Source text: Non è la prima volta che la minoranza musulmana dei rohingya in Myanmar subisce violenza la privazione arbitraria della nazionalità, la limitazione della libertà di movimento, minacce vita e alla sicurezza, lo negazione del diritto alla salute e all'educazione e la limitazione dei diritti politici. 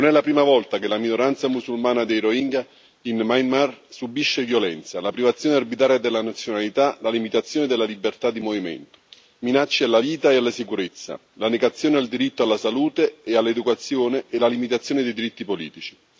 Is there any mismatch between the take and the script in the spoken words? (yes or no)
yes